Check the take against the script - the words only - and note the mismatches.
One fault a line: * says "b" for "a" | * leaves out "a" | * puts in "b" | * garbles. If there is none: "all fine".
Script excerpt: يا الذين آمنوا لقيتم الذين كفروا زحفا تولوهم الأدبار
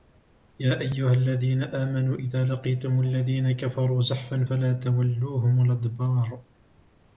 * puts in "أيها"
* puts in "إذا"
* puts in "فلا"